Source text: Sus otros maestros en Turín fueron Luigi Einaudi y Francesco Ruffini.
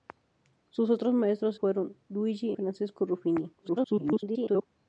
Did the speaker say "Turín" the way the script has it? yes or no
no